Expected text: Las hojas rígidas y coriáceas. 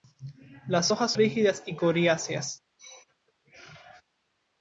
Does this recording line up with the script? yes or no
yes